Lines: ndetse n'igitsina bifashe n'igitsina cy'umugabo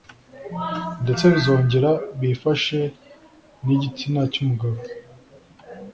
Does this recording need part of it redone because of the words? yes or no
yes